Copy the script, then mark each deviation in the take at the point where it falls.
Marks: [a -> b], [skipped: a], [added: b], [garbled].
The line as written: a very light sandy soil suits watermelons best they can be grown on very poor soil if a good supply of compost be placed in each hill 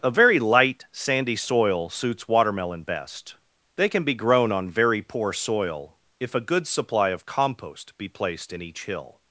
a very light sandy soil suits [watermelons -> watermelon] best they can be grown on very poor soil if a good supply of compost be placed in each hill